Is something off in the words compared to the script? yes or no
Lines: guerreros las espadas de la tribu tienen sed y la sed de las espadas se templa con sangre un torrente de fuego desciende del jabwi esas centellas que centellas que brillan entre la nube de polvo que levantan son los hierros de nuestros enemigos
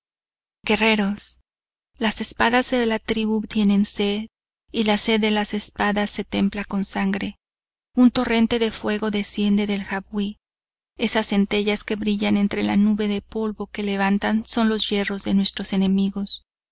yes